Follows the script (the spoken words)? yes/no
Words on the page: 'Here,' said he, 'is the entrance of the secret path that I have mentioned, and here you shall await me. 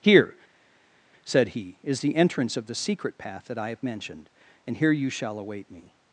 yes